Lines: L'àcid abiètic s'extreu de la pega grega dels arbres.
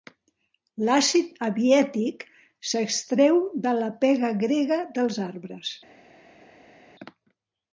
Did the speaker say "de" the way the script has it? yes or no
yes